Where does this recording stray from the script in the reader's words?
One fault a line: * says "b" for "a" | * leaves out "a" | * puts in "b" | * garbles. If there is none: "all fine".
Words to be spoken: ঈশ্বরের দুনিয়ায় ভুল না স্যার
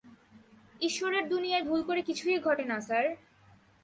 * puts in "করে কিছুই ঘটে"